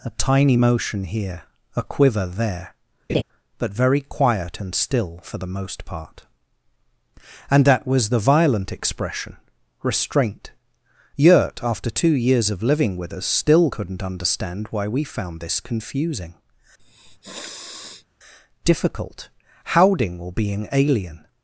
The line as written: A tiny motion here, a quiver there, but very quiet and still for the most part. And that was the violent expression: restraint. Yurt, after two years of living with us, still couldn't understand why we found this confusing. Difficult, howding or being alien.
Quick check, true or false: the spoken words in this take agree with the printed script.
true